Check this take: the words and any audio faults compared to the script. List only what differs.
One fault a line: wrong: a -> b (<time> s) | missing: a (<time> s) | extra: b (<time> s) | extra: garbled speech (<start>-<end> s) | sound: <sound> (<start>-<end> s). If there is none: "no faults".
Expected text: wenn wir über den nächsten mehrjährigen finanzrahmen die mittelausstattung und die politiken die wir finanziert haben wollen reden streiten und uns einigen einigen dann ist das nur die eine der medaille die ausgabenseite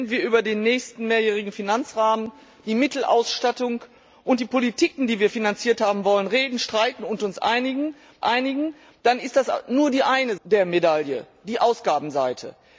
no faults